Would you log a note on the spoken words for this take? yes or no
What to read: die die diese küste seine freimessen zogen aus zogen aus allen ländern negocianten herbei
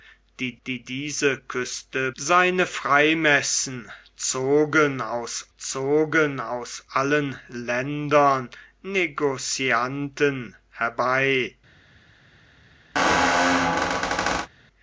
no